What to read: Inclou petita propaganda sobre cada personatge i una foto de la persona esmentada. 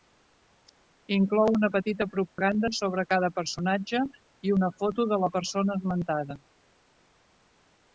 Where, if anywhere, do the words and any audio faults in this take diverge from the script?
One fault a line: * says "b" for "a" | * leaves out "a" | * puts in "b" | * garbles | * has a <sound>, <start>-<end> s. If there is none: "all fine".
* puts in "una"
* has a dropout, 2.3-2.4 s